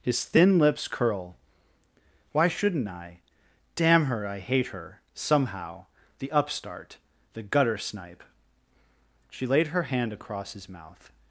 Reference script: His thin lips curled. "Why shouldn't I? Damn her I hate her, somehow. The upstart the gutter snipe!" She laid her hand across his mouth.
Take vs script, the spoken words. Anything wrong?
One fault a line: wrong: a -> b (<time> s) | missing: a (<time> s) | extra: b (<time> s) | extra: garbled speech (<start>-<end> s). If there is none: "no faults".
wrong: curled -> curl (0.9 s)